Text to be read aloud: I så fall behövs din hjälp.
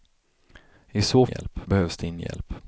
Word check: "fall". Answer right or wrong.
wrong